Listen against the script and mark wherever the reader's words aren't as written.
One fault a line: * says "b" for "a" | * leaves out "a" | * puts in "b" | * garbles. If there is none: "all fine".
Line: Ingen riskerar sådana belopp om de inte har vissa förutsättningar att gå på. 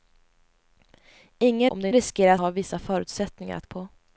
* leaves out "riskerar sådana belopp"
* says "riskerar" for "inte"
* leaves out "gå"